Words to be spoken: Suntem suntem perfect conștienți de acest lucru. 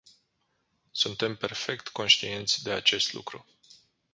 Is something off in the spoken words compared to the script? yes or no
yes